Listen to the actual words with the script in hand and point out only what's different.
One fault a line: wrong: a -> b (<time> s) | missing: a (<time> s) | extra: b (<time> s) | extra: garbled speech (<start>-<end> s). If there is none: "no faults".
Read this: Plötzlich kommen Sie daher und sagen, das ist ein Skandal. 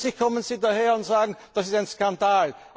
no faults